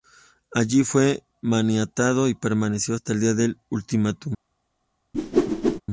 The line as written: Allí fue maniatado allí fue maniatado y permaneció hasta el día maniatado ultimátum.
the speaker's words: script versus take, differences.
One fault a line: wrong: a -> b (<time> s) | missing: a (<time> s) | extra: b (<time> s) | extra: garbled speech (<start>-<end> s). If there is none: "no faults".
missing: allí fue maniatado (2.3 s)
wrong: maniatado -> del (3.3 s)